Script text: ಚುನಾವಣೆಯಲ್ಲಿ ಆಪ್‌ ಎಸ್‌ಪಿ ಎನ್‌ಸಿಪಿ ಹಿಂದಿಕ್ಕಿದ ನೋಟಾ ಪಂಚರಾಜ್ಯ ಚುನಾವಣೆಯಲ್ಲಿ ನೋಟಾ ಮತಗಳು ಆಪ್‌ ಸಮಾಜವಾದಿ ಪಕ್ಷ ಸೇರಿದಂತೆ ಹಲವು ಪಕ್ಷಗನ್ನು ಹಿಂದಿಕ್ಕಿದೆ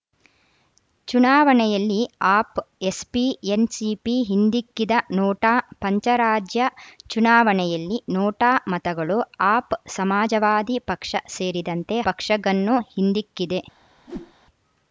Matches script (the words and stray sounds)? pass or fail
fail